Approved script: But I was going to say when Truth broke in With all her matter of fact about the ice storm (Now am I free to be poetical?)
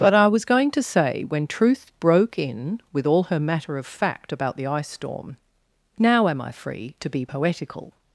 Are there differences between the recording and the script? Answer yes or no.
no